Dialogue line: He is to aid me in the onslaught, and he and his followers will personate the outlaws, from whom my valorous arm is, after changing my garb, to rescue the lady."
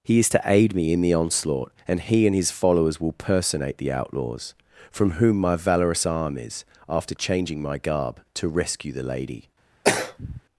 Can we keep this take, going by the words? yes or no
yes